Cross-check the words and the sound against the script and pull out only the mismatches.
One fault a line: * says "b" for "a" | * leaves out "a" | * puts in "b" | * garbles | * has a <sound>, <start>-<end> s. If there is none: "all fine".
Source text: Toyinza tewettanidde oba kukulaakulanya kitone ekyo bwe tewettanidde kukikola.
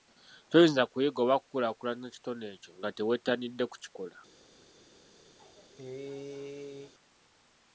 * says "kuyiga" for "tewettanidde"
* says "nga" for "bwe"
* has a cough, 5.4-6.9 s